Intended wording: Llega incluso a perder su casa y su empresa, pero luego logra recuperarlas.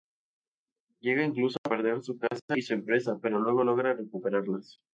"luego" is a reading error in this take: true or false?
false